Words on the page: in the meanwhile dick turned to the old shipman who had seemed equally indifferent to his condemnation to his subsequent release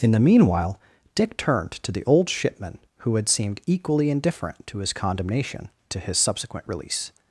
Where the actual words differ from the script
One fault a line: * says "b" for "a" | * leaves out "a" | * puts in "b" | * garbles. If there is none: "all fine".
all fine